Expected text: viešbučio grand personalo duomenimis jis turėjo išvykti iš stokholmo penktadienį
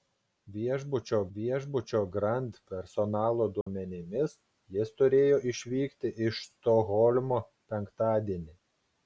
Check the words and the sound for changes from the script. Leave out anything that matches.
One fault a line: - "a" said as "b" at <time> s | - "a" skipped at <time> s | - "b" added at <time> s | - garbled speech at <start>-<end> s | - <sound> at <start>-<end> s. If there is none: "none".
- "viešbučio" added at 1.3 s
- dropout at 3.6-3.7 s